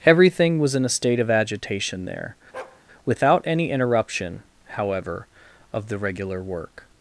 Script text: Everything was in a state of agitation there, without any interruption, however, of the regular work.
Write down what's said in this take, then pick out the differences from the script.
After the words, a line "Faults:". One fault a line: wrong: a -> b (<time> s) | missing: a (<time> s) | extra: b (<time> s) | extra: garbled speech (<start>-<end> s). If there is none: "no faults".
Everything was in a state of agitation there, without any interruption, however, of the regular work.
Faults:
no faults